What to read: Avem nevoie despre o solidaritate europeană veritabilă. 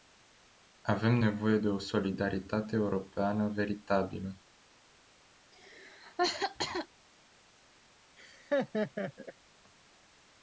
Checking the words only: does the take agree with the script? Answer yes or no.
no